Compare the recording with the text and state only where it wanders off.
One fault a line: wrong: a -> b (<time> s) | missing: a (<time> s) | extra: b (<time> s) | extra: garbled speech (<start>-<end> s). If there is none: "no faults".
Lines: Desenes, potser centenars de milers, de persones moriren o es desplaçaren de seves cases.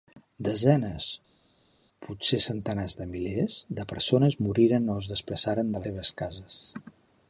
no faults